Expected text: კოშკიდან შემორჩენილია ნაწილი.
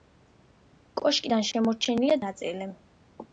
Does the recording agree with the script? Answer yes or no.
yes